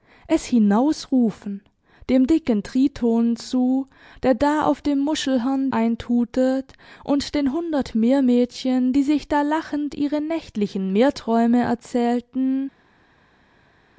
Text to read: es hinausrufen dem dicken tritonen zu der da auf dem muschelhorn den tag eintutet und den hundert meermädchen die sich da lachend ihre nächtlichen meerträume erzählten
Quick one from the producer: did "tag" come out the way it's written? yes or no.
no